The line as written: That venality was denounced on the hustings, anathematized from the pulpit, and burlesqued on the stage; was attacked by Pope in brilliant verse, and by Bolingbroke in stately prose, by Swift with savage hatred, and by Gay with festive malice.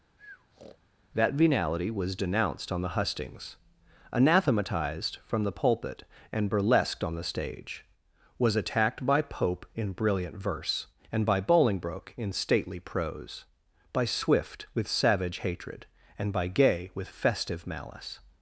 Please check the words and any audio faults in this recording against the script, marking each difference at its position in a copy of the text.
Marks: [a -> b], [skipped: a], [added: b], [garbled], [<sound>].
[breath] That venality was denounced on the hustings, anathematized from the pulpit, and burlesqued on the stage; was attacked by Pope in brilliant verse, and by Bolingbroke in stately prose, by Swift with savage hatred, and by Gay with festive malice.